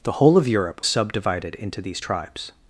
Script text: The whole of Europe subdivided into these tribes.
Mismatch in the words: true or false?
false